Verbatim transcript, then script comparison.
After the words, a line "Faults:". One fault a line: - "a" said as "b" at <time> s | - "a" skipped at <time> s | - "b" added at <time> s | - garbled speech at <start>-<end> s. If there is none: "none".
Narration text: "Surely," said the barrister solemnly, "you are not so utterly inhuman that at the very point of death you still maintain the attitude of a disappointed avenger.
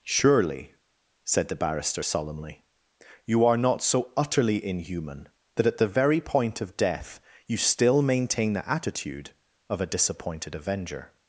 "Surely," said the barrister solemnly, "you are not so utterly inhuman that at the very point of death you still maintain the attitude of a disappointed avenger.
Faults:
none